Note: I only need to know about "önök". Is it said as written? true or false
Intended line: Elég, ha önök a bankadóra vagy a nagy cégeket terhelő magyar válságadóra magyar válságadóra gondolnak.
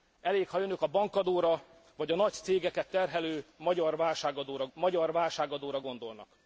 true